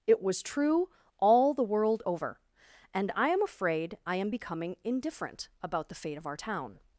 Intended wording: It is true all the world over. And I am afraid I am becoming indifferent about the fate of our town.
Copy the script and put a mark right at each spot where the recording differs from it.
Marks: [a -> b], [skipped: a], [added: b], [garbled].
It [is -> was] true all the world over. And I am afraid I am becoming indifferent about the fate of our town.